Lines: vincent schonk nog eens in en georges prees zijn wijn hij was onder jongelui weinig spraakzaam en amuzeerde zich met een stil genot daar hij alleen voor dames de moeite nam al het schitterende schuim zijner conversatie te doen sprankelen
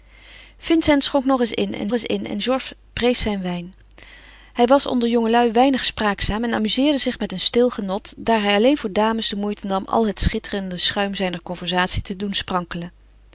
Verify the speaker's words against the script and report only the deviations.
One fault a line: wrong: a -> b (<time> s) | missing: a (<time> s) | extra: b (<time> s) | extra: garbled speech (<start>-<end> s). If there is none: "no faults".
extra: eens in en (1.9 s)